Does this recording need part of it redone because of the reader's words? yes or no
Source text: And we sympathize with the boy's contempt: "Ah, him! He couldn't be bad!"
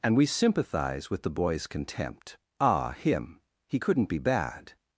no